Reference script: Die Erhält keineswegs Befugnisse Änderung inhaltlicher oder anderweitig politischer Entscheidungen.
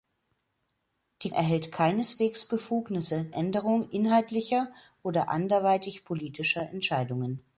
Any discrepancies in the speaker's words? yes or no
no